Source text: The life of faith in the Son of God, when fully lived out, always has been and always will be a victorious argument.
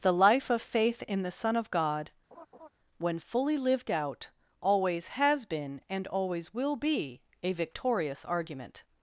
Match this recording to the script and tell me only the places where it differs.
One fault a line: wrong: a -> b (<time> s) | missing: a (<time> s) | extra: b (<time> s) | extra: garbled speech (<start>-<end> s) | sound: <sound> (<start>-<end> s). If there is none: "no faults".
sound: laugh (2.3-2.7 s)